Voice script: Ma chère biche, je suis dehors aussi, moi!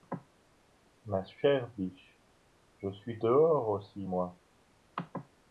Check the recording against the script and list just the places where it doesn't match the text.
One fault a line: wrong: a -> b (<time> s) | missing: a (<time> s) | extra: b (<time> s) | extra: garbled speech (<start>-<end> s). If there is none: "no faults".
no faults